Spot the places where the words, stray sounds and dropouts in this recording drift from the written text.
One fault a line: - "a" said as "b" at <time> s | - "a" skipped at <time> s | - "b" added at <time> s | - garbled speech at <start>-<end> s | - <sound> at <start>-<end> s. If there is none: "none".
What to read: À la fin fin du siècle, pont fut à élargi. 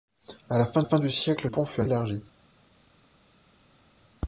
none